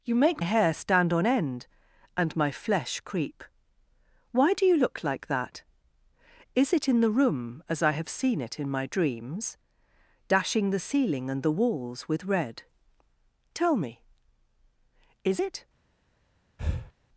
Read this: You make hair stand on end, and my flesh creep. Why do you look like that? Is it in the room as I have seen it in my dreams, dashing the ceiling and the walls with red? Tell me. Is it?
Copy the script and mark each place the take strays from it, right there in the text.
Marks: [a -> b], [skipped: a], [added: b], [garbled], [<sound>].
You make hair stand on end, and my flesh creep. Why do you look like that? Is it in the room as I have seen it in my dreams, dashing the ceiling and the walls with red? Tell me. Is it? [breath]